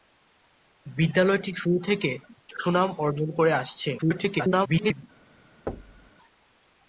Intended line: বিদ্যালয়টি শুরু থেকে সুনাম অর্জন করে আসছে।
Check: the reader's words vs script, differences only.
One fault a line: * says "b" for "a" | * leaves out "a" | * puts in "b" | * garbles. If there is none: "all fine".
* garbles